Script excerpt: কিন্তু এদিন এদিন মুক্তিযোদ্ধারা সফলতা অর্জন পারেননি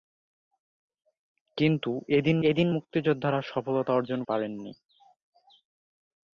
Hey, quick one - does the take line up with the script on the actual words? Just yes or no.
yes